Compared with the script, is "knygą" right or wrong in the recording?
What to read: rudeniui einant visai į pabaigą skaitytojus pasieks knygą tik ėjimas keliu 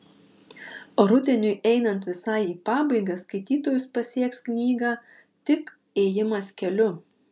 right